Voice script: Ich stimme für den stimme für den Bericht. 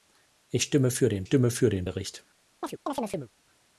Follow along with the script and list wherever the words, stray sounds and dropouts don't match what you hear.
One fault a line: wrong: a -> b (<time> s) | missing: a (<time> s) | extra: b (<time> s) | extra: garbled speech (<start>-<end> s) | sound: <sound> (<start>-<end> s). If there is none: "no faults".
sound: chirp (2.6-3.3 s)